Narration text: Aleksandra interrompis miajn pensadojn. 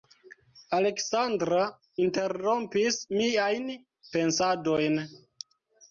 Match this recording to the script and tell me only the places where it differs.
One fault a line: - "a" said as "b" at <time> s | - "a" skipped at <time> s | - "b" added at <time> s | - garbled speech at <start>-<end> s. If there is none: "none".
none